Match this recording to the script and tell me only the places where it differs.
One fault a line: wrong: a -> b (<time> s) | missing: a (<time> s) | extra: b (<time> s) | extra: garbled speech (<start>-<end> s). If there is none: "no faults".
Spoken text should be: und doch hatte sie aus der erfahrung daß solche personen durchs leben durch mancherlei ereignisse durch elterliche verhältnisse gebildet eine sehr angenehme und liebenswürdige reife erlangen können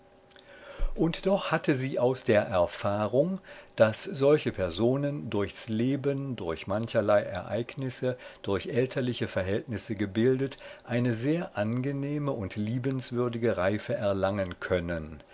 no faults